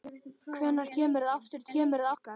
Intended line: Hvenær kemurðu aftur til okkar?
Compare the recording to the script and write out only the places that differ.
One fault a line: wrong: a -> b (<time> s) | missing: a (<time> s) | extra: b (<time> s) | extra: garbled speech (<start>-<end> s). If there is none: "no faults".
wrong: til -> kemurðu (1.7 s)